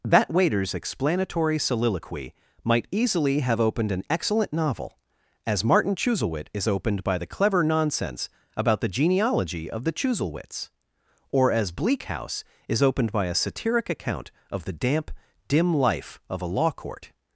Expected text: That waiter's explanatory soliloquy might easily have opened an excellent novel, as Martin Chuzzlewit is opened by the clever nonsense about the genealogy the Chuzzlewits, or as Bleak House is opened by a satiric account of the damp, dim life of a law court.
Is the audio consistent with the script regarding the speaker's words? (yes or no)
no